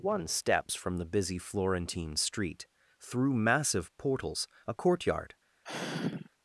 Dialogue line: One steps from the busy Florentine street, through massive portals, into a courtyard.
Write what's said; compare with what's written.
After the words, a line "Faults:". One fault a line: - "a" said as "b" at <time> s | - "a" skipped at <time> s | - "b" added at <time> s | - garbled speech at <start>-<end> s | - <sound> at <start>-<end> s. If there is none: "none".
One steps from the busy Florentine street, through massive portals, a courtyard.
Faults:
- "into" skipped at 4.5 s
- sigh at 5.6-6.3 s